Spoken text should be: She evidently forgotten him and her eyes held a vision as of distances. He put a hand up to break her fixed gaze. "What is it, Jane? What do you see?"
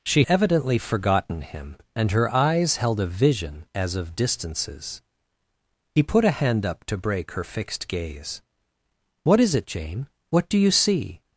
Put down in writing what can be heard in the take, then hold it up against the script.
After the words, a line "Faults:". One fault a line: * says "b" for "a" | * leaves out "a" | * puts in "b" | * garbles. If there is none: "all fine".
She evidently forgotten him and her eyes held a vision as of distances. He put a hand up to break her fixed gaze. "What is it, Jane? What do you see?"
Faults:
all fine